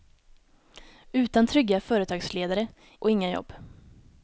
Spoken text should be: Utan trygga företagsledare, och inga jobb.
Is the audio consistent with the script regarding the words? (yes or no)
yes